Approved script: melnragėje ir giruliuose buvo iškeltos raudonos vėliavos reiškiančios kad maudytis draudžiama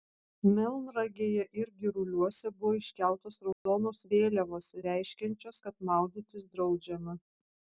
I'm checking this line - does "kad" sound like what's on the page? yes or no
yes